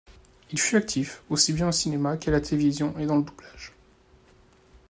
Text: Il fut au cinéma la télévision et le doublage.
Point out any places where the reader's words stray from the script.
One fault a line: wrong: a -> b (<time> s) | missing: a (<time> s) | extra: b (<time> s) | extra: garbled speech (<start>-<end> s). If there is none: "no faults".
extra: actif aussi bien (0.8 s)
extra: qu'à (2.1 s)
extra: dans (3.0 s)